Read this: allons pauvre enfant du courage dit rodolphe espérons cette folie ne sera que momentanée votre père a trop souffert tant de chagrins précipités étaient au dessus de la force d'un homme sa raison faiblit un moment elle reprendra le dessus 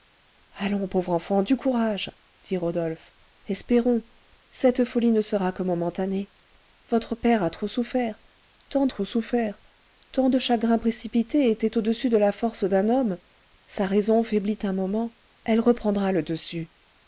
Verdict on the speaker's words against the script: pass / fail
fail